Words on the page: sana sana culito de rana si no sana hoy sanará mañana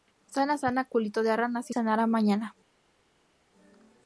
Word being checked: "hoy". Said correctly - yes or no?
no